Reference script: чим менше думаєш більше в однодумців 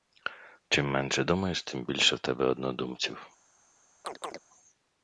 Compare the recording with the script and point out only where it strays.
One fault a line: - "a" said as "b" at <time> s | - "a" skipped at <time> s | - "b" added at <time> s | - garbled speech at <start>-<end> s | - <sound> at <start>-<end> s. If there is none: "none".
- "тим" added at 1.6 s
- "тебе" added at 2.2 s
- chirp at 4.0-4.4 s